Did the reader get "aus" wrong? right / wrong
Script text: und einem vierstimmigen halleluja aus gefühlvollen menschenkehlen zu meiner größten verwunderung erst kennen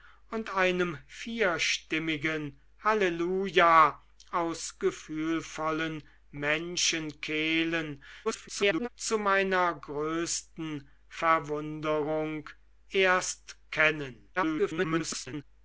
right